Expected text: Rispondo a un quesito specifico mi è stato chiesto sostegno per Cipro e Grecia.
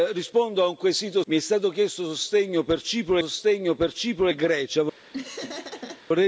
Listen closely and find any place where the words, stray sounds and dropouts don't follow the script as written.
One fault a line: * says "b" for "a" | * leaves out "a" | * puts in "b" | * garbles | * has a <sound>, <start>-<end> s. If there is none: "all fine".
* leaves out "specifico"
* puts in "sostegno per Cipro"
* has a laugh, 5.1-6.0 s